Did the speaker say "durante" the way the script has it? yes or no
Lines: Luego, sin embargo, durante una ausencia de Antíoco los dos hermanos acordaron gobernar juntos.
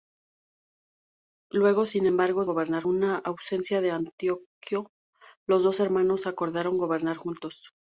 no